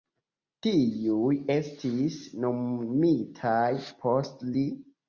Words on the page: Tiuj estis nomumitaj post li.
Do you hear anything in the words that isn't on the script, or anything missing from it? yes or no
no